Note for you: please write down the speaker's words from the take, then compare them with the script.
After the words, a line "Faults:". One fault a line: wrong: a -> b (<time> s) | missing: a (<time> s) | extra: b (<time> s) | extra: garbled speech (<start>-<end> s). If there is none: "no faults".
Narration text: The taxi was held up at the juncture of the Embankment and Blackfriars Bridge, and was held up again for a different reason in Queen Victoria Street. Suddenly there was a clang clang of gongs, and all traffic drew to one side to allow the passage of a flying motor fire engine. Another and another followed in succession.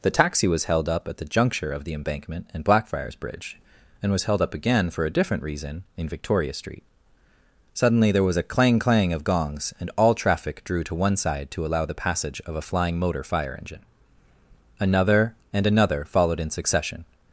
The taxi was held up at the juncture of the Embankment and Blackfriars Bridge, and was held up again for a different reason in Victoria Street. Suddenly there was a clang clang of gongs, and all traffic drew to one side to allow the passage of a flying motor fire engine. Another and another followed in succession.
Faults:
missing: Queen (6.1 s)